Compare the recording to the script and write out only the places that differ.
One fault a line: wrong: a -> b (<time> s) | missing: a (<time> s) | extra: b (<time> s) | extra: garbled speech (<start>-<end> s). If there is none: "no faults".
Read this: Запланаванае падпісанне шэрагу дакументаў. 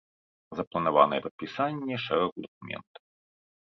no faults